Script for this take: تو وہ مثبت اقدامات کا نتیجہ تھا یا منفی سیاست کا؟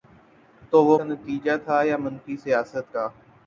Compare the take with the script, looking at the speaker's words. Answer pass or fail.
fail